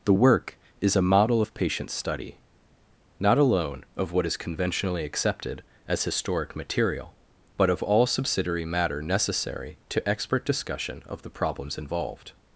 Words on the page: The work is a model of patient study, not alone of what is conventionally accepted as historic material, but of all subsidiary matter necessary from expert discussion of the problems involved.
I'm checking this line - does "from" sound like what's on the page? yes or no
no